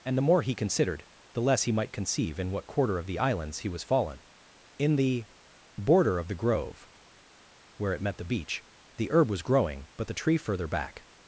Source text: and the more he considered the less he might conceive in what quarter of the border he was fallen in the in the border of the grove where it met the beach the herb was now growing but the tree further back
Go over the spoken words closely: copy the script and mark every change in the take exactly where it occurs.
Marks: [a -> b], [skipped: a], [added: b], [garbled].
and the more he considered the less he might conceive in what quarter of the [border -> islands] he was fallen in the [skipped: in the] border of the grove where it met the beach the herb was [skipped: now] growing but the tree further back